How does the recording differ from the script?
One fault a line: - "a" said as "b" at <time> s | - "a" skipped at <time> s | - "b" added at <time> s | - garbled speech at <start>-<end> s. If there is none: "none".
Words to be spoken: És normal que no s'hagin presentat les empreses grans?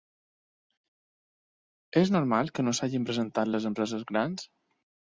none